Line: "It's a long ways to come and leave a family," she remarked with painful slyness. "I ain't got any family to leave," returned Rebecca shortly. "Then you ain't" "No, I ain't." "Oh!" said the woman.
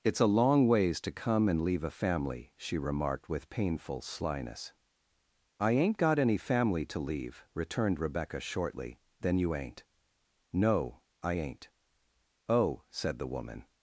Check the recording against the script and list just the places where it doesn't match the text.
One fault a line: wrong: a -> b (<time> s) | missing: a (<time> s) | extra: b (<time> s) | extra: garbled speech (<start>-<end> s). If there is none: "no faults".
no faults